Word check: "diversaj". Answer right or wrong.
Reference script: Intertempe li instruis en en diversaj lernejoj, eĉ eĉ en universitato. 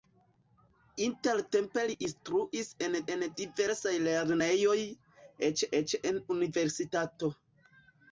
right